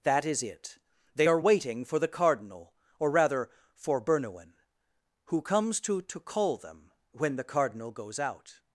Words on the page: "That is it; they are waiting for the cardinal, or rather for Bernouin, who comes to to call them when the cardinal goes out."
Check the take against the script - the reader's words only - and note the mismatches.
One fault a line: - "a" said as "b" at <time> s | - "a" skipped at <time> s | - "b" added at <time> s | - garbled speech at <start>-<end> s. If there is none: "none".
none